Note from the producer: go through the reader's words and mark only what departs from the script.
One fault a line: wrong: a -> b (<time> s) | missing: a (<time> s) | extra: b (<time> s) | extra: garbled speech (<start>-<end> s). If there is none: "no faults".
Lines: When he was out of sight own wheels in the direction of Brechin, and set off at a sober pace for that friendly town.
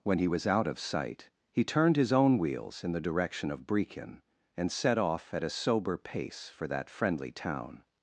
extra: he turned his (1.5 s)